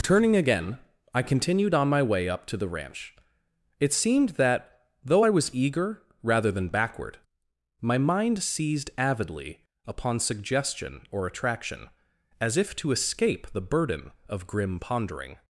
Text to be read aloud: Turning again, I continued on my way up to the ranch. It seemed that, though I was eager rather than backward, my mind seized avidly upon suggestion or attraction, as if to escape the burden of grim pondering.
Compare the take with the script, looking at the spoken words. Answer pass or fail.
pass